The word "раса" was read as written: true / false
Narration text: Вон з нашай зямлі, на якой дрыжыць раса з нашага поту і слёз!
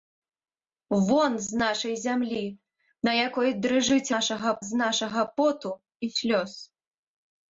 false